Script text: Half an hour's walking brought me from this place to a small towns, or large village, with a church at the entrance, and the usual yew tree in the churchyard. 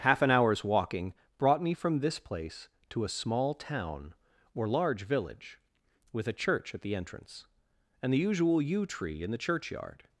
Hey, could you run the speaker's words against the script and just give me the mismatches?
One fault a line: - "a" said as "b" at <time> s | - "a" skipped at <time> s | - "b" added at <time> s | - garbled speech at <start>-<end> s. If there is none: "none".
- "towns" said as "town" at 3.5 s